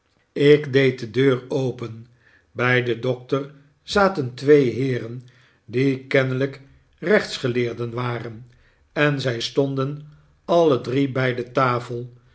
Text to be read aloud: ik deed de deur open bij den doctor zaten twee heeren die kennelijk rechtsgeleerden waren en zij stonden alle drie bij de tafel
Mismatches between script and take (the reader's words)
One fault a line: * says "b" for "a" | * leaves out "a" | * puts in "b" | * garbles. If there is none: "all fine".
all fine